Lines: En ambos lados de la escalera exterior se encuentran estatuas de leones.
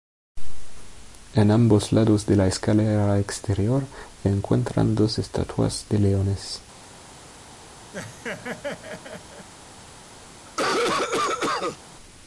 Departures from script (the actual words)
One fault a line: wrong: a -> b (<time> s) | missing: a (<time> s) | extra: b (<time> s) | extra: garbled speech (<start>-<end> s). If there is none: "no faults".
extra: dos (5.0 s)